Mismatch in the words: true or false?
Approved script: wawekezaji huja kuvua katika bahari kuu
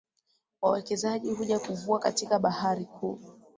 false